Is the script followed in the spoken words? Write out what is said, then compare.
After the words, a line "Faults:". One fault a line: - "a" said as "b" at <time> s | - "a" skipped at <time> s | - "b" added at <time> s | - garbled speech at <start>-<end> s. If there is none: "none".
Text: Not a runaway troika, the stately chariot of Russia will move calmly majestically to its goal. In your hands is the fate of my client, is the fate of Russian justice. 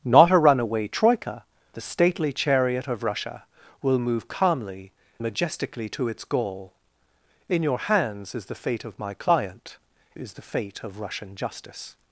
Not a runaway troika, the stately chariot of Russia will move calmly majestically to its goal. In your hands is the fate of my client, is the fate of Russian justice.
Faults:
none